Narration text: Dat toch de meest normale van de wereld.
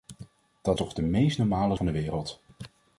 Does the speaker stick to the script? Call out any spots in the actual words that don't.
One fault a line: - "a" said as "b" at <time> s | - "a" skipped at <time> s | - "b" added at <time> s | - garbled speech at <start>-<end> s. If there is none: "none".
none